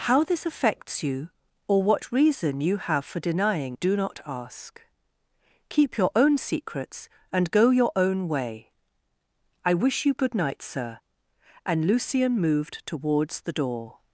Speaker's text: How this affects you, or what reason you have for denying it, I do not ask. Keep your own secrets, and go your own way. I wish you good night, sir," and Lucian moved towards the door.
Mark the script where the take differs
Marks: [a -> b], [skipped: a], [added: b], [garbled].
How this affects you, or what reason you have for denying [skipped: it, I] do not ask. Keep your own secrets, and go your own way. I wish you good night, sir," and Lucian moved towards the door.